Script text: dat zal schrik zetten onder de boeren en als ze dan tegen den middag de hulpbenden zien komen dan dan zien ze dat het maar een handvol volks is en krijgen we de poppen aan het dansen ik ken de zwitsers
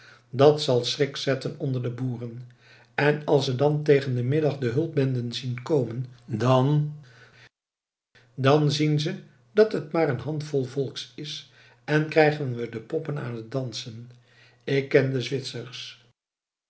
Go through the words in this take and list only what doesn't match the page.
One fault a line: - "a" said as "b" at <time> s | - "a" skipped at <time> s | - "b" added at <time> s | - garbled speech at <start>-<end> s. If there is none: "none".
none